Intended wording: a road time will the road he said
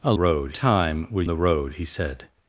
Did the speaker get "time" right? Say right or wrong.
right